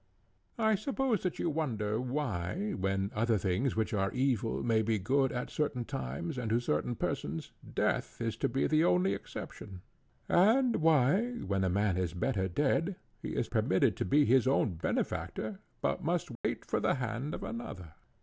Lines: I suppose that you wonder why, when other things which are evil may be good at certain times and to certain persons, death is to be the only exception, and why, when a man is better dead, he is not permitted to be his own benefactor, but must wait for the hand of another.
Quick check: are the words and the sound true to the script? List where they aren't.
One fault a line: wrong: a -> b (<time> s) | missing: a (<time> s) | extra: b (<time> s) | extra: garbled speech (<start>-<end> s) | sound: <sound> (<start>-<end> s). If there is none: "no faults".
missing: not (13.5 s)
sound: dropout (16.4-16.4 s)